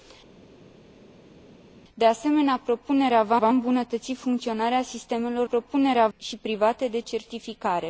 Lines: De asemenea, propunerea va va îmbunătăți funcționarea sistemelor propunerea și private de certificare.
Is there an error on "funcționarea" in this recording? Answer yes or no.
no